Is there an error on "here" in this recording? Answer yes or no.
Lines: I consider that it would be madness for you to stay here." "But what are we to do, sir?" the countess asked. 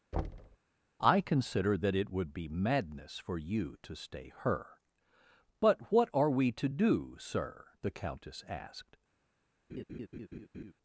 yes